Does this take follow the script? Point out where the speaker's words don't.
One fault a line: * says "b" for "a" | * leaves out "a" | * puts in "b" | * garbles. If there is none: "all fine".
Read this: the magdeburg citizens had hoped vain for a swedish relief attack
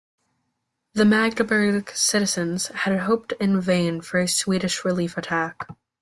* puts in "in"